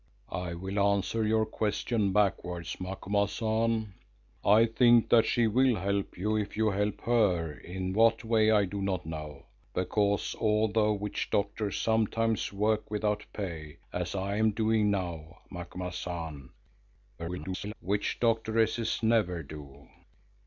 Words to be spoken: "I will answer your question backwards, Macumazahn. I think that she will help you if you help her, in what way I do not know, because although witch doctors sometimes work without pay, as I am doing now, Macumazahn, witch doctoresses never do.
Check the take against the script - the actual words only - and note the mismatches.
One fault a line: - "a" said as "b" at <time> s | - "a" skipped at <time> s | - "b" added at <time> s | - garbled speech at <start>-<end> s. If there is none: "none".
- garbled speech at 17.2-17.7 s